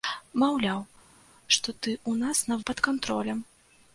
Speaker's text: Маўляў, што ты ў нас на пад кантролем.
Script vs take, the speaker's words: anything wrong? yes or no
no